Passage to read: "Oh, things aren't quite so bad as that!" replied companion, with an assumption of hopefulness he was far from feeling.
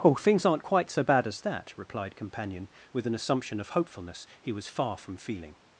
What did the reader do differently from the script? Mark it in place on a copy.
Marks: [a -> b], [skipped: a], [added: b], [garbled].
"Oh, things aren't quite so bad as that!" replied companion, with an assumption of hopefulness he was far from feeling.